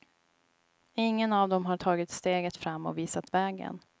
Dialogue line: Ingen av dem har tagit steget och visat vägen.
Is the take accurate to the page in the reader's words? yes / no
no